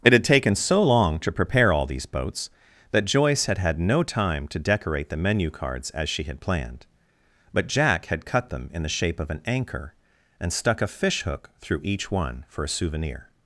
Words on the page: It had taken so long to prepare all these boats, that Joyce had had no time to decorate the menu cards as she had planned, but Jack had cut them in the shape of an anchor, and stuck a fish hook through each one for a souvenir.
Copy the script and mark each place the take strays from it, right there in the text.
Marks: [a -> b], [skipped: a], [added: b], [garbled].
It had taken so long to prepare all these boats, that Joyce had had no time to decorate the menu cards as she had planned, but Jack had cut them in the shape of an anchor, and stuck a fish hook through each one for a souvenir.